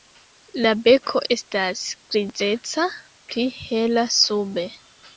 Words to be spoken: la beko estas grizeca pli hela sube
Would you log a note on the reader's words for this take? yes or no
no